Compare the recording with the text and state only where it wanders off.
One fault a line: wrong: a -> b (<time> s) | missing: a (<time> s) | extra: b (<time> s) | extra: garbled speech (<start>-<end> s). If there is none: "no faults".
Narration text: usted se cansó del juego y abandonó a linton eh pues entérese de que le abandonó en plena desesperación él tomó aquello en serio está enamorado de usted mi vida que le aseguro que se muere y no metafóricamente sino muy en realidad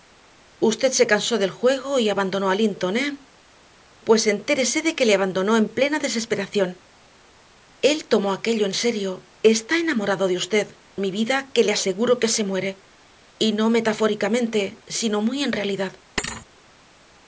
no faults